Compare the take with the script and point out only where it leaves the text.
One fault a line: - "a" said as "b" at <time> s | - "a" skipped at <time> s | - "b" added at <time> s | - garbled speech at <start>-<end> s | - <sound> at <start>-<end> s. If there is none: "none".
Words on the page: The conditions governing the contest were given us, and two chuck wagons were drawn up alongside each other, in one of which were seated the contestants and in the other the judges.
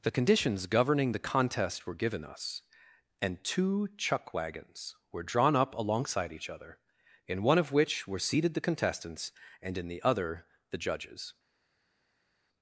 none